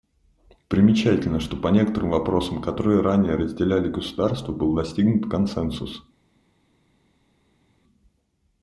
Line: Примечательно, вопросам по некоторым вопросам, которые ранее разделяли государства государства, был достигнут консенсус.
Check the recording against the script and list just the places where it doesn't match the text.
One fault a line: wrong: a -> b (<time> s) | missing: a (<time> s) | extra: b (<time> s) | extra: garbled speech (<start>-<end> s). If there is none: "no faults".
wrong: вопросам -> что (1.4 s)
missing: государства (4.5 s)